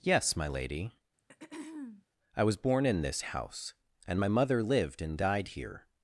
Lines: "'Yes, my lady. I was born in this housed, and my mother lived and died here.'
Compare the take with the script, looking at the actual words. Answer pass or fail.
fail